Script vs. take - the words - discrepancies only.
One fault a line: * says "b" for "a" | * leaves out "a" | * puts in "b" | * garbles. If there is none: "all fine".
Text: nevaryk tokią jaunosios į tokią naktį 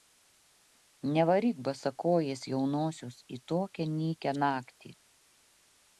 * says "basakojės" for "tokią"
* puts in "nykią"